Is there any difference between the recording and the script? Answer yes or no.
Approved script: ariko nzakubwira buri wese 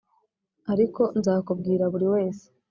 no